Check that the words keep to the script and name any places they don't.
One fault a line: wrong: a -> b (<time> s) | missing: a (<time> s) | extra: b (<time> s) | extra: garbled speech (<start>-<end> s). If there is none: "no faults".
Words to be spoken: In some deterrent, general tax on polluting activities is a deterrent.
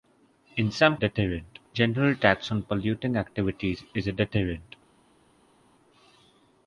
no faults